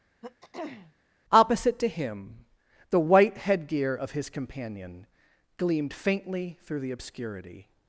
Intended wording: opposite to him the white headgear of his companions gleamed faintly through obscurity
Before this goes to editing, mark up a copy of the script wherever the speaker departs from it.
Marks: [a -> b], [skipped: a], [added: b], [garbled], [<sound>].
[throat clearing] opposite to him the white headgear of his [companions -> companion] gleamed faintly through [added: the] obscurity